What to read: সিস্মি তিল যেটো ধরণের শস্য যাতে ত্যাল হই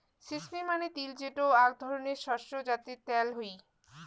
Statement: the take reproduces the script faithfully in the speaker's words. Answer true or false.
false